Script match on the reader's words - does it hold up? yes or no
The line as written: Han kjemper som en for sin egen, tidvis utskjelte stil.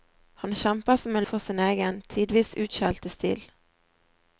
yes